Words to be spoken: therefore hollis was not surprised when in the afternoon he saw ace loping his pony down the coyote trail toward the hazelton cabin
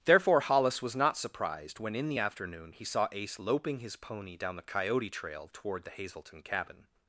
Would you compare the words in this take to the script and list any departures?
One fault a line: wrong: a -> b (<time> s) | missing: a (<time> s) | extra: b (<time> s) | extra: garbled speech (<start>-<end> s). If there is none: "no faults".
no faults